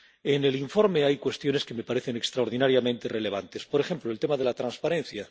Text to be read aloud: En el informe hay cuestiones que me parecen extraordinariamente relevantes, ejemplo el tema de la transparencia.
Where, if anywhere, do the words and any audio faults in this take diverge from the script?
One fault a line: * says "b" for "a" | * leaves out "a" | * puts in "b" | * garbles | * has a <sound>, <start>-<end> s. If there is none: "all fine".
* puts in "por"